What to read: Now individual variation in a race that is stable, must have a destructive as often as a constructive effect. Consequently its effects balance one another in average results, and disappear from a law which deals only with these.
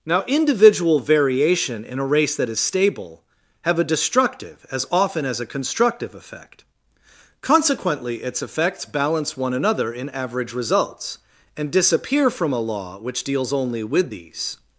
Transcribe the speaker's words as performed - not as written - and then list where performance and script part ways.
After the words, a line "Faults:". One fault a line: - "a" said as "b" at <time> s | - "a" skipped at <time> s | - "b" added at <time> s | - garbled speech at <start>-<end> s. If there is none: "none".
Now individual variation in a race that is stable, have a destructive as often as a constructive effect. Consequently its effects balance one another in average results, and disappear from a law which deals only with these.
Faults:
- "must" skipped at 3.2 s